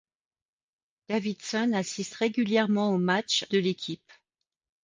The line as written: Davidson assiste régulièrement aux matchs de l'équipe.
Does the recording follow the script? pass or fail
pass